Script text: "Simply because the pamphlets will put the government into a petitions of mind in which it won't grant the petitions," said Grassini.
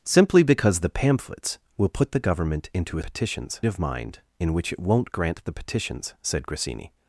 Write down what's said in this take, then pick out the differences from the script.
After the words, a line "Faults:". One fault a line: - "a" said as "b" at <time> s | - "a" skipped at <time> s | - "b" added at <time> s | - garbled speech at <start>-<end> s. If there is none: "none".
"Simply because the pamphlets will put the government into a petitions of mind in which it won't grant the petitions," said Grassini.
Faults:
none